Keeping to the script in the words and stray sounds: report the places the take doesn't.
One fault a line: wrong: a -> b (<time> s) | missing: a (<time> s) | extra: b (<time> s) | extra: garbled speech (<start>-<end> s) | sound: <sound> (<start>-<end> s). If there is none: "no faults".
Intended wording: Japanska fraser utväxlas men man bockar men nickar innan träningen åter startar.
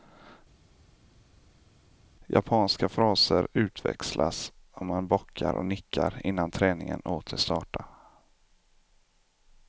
wrong: men -> och (4.7 s)
wrong: men -> och (5.5 s)